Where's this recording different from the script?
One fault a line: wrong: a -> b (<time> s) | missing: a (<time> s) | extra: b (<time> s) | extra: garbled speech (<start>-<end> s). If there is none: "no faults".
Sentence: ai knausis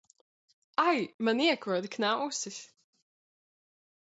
extra: man iekoda (1.2 s)